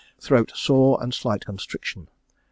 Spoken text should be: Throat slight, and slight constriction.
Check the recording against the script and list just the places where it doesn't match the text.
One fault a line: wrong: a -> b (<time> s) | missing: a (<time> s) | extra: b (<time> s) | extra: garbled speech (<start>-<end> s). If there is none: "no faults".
wrong: slight -> sore (0.5 s)